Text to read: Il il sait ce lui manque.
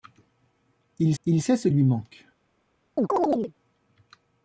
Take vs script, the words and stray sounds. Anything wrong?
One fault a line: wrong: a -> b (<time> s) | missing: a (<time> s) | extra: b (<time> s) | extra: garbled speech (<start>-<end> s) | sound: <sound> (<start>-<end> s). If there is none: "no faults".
sound: chirp (3.0-3.5 s)